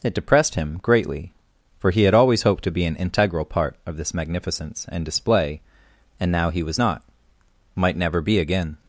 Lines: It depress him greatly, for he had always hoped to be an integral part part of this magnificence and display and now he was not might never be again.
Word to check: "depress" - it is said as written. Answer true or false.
false